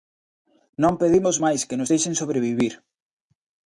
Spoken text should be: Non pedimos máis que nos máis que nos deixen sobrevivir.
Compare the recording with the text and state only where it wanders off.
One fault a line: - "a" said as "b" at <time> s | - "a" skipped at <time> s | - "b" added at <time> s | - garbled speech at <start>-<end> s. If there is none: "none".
- "máis que nos" skipped at 1.9 s